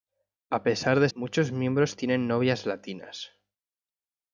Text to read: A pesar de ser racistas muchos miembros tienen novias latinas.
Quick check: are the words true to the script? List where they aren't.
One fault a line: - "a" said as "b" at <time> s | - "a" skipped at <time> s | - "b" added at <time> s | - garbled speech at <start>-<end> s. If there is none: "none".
- "ser racistas" skipped at 1.1 s